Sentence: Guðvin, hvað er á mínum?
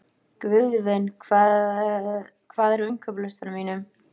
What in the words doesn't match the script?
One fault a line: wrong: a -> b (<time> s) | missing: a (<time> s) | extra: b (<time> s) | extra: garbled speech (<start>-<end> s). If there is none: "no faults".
extra: innkaupalistanum (2.9 s)